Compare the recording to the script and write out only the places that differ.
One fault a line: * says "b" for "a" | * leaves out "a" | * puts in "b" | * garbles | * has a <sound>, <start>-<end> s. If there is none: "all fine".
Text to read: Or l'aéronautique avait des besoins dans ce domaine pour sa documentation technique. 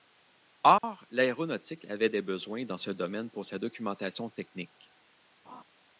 * has a dropout, 0.8-0.8 s
* has a laugh, 5.5-5.6 s